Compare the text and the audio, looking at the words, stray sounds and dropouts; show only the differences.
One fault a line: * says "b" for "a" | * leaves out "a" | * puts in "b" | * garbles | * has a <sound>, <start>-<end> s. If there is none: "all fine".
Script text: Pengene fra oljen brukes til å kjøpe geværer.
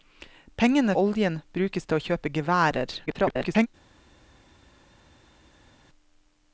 * leaves out "fra"
* garbles